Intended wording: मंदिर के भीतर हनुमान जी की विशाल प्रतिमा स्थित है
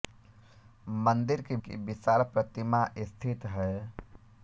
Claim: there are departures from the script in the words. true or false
true